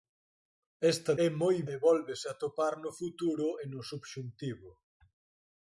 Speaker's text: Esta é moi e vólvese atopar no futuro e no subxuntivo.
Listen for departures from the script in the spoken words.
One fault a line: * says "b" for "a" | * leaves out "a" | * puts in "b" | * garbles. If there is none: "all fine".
all fine